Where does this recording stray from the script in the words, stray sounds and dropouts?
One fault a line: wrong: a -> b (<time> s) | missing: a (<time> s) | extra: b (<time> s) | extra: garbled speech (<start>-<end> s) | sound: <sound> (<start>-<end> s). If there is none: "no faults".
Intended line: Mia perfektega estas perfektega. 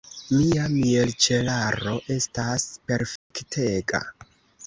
wrong: perfektega -> mielĉelaro (0.8 s)
sound: dropout (3.2-3.3 s)